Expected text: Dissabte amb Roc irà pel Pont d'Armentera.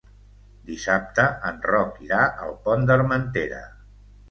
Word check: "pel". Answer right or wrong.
wrong